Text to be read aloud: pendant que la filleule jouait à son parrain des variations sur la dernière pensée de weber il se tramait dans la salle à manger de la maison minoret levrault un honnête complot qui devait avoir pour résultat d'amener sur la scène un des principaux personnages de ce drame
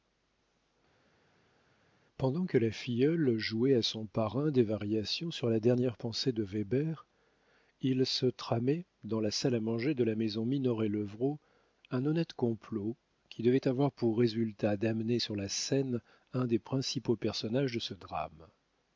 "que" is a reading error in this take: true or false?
false